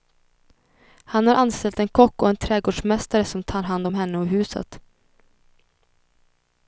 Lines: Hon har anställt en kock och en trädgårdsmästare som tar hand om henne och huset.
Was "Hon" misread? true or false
true